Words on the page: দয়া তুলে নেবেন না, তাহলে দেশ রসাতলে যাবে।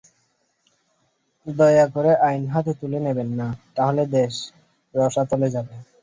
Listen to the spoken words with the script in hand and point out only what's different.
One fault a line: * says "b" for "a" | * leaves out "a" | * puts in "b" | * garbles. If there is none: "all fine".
* puts in "করে আইন হাতে"